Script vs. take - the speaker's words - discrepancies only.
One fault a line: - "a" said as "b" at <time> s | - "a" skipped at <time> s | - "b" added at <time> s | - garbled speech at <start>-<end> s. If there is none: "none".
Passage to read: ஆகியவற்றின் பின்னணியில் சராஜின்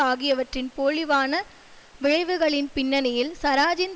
- "போழிவான விளைவுகளின்" added at 0.8 s